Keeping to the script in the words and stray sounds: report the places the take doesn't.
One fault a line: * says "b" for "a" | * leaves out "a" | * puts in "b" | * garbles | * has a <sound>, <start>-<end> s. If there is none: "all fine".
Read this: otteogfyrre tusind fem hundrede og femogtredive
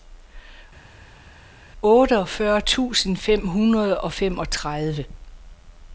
all fine